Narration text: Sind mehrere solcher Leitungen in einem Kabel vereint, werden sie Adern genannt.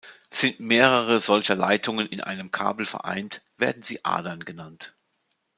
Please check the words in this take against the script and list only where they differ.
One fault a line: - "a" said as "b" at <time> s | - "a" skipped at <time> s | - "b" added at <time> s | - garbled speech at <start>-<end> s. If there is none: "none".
none